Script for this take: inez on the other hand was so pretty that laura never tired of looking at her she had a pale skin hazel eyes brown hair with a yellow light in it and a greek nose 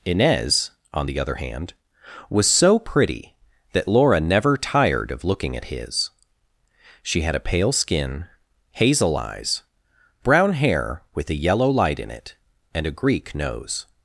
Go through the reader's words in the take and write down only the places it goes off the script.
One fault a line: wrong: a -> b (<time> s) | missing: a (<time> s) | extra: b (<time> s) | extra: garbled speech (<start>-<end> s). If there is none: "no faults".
wrong: her -> his (5.7 s)